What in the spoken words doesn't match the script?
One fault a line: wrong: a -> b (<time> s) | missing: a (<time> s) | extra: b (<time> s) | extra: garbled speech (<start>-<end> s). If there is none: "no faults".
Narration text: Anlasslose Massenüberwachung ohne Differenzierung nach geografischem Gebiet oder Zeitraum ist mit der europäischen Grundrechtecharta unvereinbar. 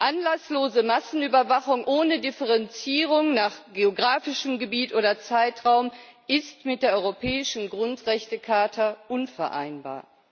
no faults